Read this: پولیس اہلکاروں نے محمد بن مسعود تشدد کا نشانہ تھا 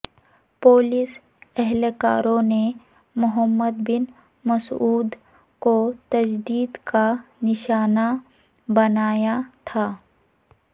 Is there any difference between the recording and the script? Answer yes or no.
yes